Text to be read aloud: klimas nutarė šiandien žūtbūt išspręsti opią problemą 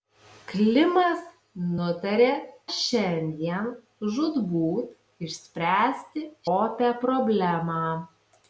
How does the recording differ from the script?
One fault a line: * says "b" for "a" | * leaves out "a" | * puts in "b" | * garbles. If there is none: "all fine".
all fine